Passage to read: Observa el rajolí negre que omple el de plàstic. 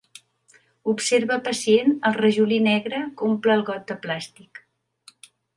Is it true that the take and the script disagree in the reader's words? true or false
true